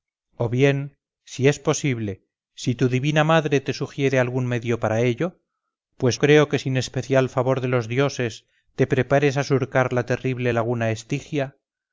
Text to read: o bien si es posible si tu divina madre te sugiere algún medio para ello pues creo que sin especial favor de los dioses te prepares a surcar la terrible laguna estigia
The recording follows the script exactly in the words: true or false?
true